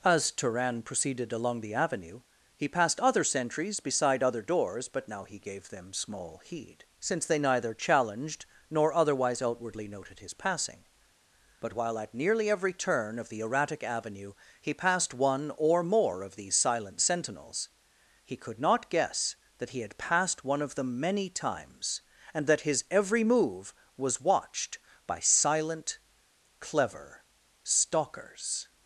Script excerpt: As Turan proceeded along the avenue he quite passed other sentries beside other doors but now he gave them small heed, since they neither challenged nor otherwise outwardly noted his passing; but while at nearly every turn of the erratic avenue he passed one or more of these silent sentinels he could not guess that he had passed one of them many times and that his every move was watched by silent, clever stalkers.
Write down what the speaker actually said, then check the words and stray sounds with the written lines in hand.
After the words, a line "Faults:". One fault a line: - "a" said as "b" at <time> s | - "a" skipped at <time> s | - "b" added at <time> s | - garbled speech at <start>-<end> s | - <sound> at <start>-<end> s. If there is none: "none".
As Turan proceeded along the avenue he passed other sentries beside other doors but now he gave them small heed, since they neither challenged nor otherwise outwardly noted his passing; but while at nearly every turn of the erratic avenue he passed one or more of these silent sentinels he could not guess that he had passed one of them many times and that his every move was watched by silent, clever stalkers.
Faults:
- "quite" skipped at 2.7 s